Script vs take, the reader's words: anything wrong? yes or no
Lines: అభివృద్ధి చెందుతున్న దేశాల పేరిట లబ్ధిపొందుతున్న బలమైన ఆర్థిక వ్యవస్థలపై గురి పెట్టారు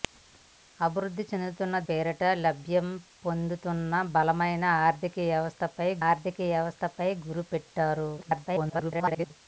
yes